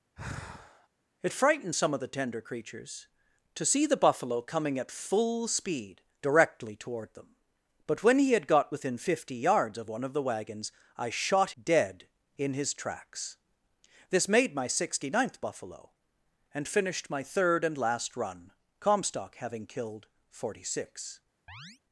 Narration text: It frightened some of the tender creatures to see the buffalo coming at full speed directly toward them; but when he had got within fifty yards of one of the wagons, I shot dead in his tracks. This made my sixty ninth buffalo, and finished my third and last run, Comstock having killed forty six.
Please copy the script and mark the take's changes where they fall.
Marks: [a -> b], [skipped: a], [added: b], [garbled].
It frightened some of the tender creatures to see the buffalo coming at full speed directly toward them; but when he had got within fifty yards of one of the wagons, I shot dead in his tracks. This made my sixty ninth buffalo, and finished my third and last run, Comstock having killed forty six.